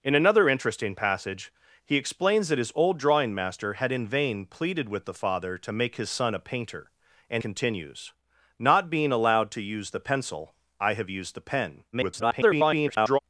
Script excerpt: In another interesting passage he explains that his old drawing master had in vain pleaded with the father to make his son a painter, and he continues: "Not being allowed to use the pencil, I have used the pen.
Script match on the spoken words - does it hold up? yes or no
no